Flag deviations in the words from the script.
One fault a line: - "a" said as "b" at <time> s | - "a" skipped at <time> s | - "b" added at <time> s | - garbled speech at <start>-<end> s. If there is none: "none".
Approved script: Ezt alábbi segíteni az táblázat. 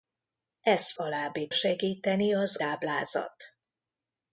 none